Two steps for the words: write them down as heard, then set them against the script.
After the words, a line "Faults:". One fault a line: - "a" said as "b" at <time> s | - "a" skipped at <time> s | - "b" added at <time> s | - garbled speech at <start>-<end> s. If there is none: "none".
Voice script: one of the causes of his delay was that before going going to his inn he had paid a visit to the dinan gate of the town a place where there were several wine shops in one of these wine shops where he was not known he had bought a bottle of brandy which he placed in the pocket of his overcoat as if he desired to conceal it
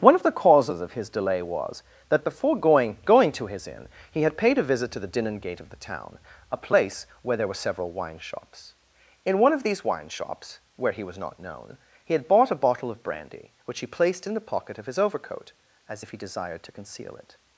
one of the causes of his delay was that before going going to his inn he had paid a visit to the dinan gate of the town a place where there were several wine shops in one of these wine shops where he was not known he had bought a bottle of brandy which he placed in the pocket of his overcoat as if he desired to conceal it
Faults:
none